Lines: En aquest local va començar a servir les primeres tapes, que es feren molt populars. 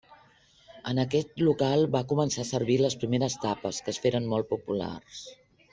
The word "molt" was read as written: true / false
true